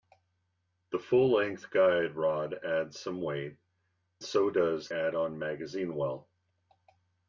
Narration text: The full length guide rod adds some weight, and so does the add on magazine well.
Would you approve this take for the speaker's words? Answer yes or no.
no